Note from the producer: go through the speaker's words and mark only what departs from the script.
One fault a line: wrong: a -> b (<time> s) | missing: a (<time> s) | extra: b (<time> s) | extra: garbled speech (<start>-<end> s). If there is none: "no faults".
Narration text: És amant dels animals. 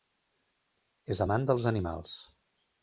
no faults